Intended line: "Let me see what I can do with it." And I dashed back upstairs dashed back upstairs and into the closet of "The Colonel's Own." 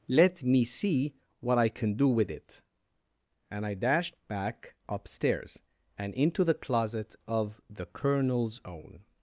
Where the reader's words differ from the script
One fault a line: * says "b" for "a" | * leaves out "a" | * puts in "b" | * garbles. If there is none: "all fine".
* leaves out "dashed back upstairs"